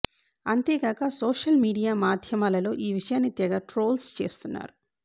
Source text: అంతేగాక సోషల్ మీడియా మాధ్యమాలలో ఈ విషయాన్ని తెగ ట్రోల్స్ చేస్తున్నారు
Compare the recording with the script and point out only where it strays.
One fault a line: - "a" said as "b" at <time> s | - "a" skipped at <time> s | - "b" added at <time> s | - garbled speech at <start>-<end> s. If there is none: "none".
none